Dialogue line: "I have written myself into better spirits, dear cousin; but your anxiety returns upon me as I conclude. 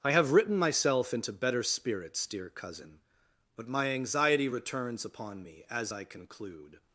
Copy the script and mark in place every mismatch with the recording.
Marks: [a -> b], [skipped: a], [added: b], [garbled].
"I have written myself into better spirits, dear cousin; but [your -> my] anxiety returns upon me as I conclude.